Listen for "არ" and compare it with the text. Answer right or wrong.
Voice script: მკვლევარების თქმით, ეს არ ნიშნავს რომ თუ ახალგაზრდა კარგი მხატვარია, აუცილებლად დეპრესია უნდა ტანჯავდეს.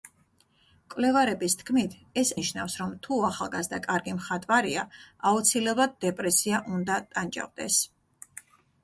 wrong